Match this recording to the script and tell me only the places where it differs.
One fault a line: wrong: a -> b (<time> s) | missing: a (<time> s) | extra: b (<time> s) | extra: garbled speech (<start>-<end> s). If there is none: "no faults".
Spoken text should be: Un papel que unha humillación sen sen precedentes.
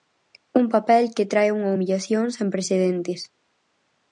extra: trae (1.3 s)
missing: sen (2.5 s)